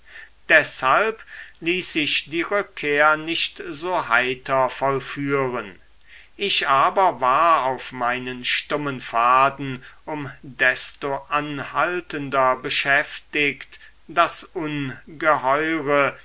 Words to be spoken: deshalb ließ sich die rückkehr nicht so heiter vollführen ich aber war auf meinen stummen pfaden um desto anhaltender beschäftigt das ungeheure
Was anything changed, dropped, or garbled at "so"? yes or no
no